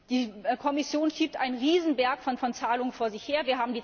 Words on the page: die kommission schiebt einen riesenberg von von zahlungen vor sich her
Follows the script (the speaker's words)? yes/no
yes